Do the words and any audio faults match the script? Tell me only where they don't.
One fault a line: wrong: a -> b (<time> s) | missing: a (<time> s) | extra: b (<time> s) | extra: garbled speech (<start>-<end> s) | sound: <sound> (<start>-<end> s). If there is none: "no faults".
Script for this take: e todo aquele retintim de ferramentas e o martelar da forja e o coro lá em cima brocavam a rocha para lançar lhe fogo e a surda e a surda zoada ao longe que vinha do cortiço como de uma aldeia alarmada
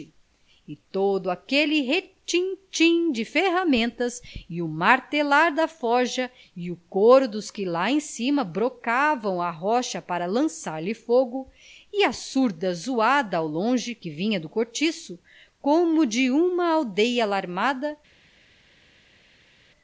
extra: dos que (7.3 s)
missing: e a surda (12.7 s)